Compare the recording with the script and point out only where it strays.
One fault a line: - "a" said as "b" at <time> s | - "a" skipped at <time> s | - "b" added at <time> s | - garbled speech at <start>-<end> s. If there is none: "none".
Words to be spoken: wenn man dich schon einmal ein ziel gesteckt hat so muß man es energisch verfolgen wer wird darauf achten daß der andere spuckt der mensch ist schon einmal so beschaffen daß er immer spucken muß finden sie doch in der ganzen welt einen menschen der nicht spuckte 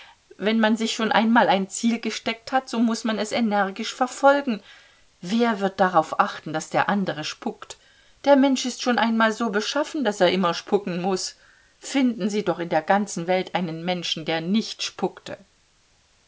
- "dich" said as "sich" at 0.8 s